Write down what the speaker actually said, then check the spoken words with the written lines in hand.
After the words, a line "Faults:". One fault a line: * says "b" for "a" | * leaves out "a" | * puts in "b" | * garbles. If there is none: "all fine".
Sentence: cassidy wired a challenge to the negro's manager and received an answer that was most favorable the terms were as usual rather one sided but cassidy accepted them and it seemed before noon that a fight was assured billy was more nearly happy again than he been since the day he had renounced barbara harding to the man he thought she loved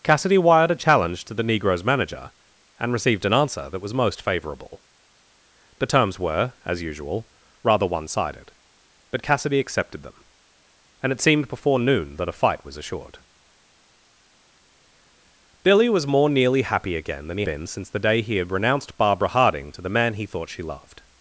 cassidy wired a challenge to the negro's manager and received an answer that was most favorable the terms were as usual rather one sided but cassidy accepted them and it seemed before noon that a fight was assured billy was more nearly happy again than he been since the day he had renounced barbara harding to the man he thought she loved
Faults:
all fine